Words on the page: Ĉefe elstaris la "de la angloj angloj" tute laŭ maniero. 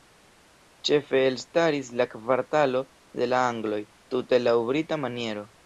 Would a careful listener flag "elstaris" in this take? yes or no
no